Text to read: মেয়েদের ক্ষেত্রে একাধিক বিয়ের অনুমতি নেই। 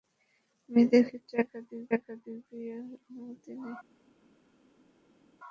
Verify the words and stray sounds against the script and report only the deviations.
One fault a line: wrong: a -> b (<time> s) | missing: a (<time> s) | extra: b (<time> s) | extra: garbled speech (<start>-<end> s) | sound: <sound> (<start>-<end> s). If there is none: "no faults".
extra: একাধিক (2.0 s)